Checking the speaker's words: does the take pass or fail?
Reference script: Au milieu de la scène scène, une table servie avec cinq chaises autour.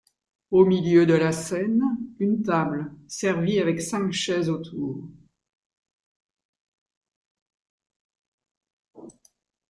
fail